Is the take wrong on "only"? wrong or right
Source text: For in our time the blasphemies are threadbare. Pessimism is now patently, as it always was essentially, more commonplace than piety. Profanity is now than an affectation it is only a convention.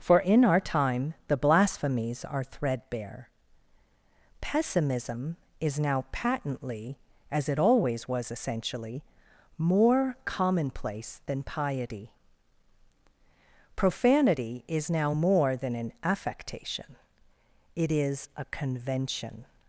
wrong